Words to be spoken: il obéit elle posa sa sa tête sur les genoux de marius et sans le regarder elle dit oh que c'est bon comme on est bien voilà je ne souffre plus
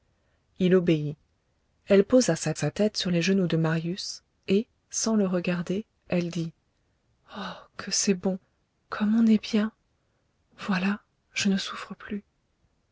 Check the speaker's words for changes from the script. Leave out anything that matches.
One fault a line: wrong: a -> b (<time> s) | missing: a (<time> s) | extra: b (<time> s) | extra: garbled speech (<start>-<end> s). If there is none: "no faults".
no faults